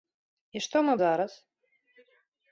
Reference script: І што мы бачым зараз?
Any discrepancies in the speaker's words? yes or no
yes